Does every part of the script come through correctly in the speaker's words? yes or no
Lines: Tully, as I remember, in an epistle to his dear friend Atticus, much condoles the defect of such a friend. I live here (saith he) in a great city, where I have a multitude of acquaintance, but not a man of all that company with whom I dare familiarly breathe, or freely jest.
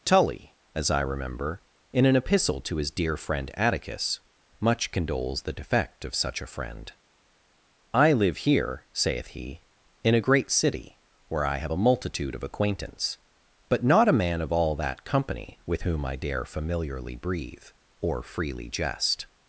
yes